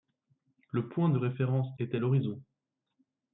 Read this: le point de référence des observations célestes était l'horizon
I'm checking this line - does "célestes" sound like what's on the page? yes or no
no